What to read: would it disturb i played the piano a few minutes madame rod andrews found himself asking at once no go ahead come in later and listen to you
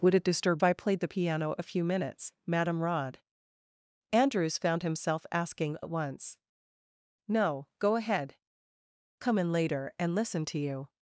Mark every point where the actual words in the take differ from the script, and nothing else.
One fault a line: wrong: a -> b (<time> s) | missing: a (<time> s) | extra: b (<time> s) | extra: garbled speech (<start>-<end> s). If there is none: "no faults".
no faults